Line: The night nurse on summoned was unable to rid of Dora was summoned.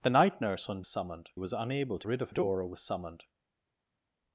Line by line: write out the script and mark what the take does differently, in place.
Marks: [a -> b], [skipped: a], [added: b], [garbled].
The night nurse on summoned was unable to rid of Dora was summoned.